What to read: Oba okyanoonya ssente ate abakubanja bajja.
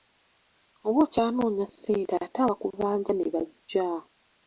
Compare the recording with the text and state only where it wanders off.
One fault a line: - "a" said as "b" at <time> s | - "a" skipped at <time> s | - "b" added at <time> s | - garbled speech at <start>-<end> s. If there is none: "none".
- "ne" added at 3.1 s